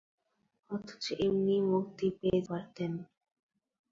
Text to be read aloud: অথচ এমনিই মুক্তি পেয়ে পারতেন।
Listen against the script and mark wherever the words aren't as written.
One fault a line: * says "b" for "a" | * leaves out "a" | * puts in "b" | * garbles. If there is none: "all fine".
all fine